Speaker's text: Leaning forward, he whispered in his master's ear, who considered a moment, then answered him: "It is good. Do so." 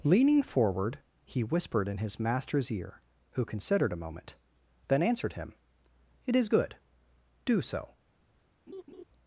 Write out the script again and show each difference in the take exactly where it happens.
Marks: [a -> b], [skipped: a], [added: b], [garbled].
Leaning forward, he whispered in his master's ear, who considered a moment, then answered him: "It is good. Do so."